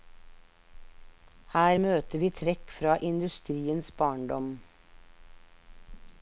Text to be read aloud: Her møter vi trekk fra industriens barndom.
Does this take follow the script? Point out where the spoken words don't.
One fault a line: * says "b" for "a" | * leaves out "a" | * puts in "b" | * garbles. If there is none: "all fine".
all fine